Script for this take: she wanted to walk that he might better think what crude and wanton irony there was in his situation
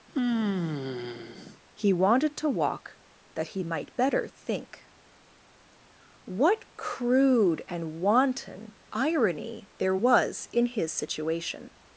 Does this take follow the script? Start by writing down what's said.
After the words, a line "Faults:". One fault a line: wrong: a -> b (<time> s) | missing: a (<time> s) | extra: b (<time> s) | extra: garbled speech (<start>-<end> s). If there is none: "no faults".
he wanted to walk that he might better think what crude and wanton irony there was in his situation
Faults:
wrong: she -> he (1.7 s)